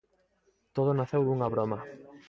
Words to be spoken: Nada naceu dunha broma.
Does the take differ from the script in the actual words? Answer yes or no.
yes